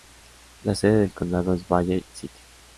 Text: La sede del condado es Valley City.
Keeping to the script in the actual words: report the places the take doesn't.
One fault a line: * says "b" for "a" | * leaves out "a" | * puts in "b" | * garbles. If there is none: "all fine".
all fine